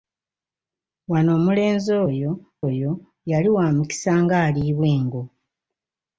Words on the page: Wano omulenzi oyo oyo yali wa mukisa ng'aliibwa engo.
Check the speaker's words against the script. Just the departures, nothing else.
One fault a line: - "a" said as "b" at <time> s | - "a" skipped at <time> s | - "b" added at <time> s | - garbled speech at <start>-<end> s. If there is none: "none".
none